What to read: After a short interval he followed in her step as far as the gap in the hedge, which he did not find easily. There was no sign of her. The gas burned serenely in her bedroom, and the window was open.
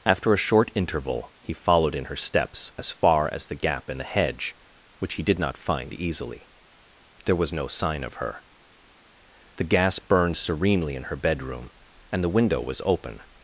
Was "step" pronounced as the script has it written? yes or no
no